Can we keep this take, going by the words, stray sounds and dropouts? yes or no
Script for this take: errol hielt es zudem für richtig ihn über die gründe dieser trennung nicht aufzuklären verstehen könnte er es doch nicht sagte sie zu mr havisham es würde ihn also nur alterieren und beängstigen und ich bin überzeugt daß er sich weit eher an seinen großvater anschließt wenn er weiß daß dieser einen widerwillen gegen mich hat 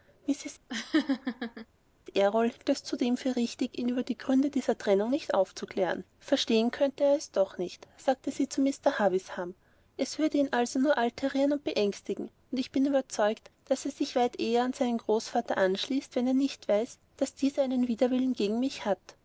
no